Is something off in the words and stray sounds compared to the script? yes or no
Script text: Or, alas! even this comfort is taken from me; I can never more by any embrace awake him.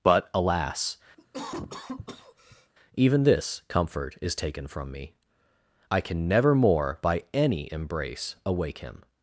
yes